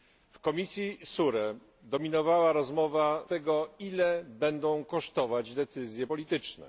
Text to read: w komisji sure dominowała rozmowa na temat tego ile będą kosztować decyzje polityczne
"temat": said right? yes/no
no